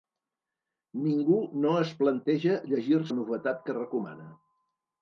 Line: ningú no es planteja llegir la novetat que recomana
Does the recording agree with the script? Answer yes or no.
yes